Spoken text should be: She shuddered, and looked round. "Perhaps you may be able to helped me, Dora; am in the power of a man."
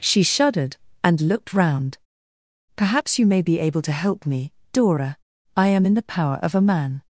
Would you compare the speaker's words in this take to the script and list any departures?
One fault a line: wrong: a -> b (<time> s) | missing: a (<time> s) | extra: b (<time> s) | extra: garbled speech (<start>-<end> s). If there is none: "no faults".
wrong: helped -> help (3.9 s)
extra: I (5.6 s)